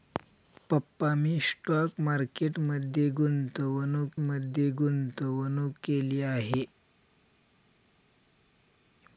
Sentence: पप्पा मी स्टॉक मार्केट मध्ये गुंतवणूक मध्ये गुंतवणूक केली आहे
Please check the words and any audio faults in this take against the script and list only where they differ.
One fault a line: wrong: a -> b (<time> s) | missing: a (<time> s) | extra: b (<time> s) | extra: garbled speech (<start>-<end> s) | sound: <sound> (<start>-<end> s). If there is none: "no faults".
no faults